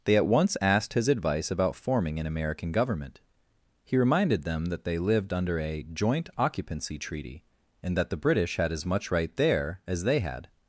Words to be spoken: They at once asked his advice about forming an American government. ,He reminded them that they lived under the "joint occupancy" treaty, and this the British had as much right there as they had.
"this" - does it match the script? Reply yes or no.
no